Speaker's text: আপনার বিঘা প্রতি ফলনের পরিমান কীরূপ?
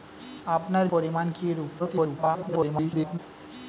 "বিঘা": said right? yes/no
no